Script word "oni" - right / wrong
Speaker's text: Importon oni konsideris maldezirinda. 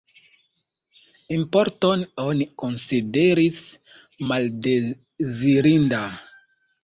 right